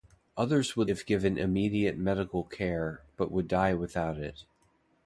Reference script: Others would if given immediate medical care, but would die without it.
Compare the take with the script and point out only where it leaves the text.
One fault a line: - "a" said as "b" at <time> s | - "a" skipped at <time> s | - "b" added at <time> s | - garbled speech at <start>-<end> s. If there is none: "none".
none